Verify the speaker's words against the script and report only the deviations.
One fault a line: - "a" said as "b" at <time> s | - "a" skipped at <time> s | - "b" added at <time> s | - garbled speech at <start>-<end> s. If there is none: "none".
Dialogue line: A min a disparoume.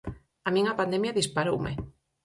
- "pandemia" added at 0.8 s